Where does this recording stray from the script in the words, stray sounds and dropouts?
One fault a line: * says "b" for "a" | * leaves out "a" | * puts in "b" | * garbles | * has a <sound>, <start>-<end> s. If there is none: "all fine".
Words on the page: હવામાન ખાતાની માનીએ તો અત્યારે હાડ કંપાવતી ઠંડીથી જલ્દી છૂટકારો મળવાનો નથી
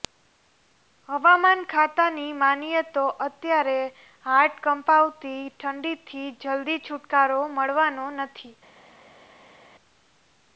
all fine